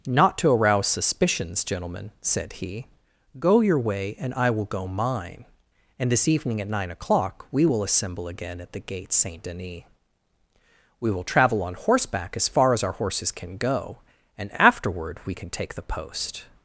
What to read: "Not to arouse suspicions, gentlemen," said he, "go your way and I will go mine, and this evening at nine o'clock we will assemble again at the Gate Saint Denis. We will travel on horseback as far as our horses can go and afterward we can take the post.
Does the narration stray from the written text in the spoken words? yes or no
no